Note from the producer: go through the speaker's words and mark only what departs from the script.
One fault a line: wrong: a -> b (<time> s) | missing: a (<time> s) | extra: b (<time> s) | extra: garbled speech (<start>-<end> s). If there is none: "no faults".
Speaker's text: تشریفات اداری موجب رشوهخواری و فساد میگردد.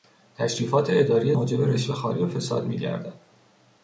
no faults